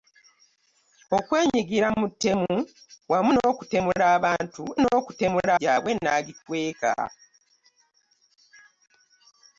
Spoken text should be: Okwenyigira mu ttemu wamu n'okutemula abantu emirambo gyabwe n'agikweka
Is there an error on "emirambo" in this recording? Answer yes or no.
yes